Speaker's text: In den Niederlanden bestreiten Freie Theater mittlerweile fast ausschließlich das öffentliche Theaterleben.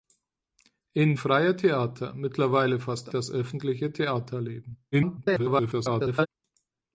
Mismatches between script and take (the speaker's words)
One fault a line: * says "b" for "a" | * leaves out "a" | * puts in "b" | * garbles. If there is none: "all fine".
* leaves out "den Niederlanden bestreiten"
* leaves out "ausschließlich"
* garbles